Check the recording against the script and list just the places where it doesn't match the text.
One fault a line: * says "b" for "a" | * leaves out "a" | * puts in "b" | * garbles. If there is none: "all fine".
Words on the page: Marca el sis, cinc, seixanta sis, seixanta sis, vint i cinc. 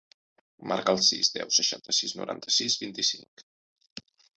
* says "deu" for "cinc"
* says "noranta" for "seixanta"